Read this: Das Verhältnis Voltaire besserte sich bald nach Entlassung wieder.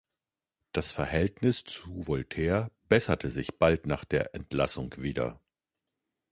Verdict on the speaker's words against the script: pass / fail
fail